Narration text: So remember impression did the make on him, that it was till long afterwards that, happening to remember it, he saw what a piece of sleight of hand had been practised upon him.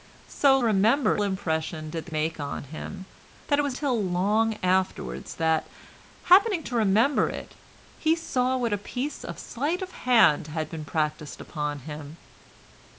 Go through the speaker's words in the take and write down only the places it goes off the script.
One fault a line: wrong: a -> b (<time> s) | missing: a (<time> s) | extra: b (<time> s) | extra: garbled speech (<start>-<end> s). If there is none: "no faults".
no faults